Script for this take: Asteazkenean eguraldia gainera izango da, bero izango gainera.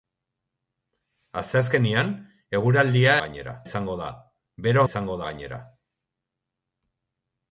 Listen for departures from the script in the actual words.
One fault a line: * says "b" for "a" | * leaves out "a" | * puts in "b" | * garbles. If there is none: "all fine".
all fine